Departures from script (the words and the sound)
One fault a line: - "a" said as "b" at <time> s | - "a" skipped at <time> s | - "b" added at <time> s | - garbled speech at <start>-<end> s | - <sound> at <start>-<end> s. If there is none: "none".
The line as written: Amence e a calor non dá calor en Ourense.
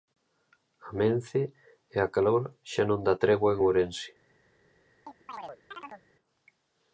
- "xa" added at 2.7 s
- "calor" said as "tregua" at 3.2 s
- chirp at 5.1-6.0 s